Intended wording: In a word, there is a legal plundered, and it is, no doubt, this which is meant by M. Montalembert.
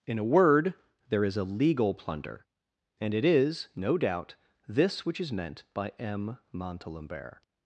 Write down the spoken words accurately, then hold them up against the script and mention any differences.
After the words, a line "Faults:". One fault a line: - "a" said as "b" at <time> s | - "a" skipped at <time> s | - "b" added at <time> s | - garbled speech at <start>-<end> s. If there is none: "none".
In a word, there is a legal plunder, and it is, no doubt, this which is meant by M. Montalembert.
Faults:
- "plundered" said as "plunder" at 1.9 s